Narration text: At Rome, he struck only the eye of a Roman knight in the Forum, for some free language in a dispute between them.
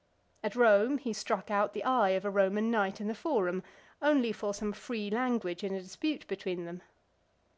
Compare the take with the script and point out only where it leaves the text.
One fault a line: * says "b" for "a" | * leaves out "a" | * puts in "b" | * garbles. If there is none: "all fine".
* says "out" for "only"
* puts in "only"